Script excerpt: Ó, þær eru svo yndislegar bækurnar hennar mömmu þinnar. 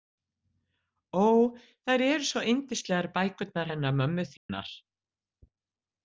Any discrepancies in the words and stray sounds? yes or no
yes